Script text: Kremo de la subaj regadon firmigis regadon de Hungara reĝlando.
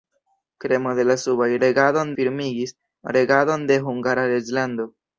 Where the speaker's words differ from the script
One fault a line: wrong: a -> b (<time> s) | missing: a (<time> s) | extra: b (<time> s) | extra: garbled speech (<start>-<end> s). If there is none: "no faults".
no faults